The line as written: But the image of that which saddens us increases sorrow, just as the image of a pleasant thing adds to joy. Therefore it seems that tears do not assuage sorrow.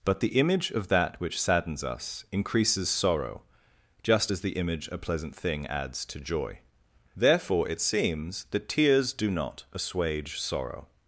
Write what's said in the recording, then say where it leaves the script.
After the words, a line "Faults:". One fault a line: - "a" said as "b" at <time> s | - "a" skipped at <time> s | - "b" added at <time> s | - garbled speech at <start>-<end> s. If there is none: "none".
But the image of that which saddens us increases sorrow, just as the image a pleasant thing adds to joy. Therefore it seems that tears do not assuage sorrow.
Faults:
- "of" skipped at 4.9 s